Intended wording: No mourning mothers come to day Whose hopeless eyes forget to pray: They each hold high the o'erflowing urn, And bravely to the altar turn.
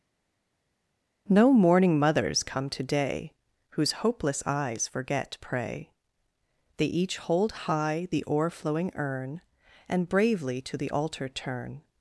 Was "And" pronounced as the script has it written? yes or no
yes